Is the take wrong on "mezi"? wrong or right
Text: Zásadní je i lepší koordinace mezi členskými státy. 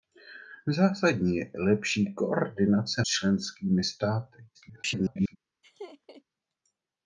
wrong